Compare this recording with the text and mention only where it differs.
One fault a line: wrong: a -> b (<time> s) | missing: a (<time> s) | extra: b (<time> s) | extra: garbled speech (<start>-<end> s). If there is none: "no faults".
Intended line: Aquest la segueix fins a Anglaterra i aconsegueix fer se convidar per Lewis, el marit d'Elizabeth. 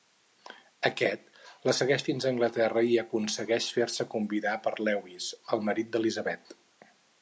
no faults